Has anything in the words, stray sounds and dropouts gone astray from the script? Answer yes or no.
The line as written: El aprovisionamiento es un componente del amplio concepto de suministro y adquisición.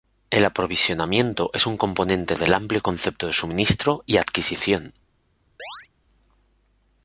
yes